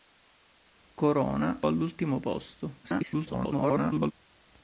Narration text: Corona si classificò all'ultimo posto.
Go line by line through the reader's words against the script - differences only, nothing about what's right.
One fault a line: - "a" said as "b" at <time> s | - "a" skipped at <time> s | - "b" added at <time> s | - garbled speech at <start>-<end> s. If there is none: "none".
- "si classificò" skipped at 1.6 s
- garbled speech at 2.8-4.1 s